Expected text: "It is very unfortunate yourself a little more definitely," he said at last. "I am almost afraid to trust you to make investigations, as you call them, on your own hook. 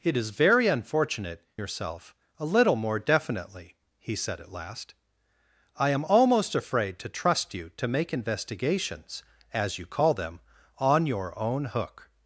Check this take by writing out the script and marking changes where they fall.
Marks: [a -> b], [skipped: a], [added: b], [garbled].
"It is very unfortunate yourself a little more definitely," he said at last. "I am almost afraid to trust you to make investigations, as you call them, on your own hook.